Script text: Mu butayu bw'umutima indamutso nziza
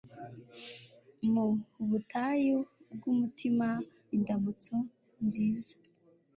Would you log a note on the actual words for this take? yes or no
no